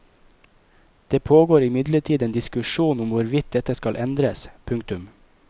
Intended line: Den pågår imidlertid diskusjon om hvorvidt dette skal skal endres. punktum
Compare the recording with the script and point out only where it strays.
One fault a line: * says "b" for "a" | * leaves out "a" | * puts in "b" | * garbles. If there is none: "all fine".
* says "Det" for "Den"
* puts in "en"
* leaves out "skal"